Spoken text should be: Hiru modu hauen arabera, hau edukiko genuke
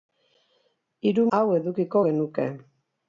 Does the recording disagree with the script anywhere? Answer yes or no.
yes